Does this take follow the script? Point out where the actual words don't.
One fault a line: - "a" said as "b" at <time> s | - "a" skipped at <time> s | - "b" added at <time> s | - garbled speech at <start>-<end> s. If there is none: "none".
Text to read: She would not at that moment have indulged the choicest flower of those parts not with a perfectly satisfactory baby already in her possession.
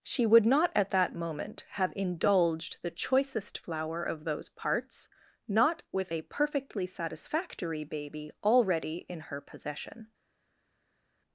none